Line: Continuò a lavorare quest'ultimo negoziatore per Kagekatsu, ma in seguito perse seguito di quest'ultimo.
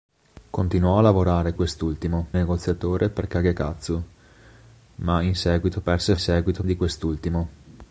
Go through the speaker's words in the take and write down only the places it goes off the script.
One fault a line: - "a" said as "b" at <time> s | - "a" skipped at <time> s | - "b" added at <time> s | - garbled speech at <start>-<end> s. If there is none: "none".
none